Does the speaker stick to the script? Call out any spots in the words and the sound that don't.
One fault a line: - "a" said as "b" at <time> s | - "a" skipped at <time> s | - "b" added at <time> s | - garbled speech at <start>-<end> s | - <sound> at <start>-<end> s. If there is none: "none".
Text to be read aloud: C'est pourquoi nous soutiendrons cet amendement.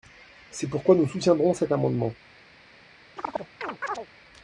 - chirp at 3.2-4.1 s